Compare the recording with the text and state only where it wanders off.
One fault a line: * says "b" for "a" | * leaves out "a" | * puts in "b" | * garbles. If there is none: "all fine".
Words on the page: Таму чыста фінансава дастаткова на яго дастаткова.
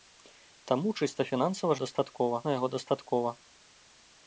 all fine